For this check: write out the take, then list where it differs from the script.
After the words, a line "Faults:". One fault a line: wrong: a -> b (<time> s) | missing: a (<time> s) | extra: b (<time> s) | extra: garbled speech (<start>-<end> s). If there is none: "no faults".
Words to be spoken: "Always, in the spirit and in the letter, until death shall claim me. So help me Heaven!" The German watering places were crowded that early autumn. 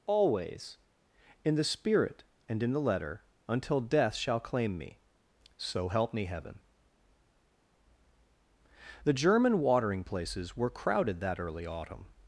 "Always, in the spirit and in the letter, until death shall claim me. So help me Heaven!" The German watering places were crowded that early autumn.
Faults:
no faults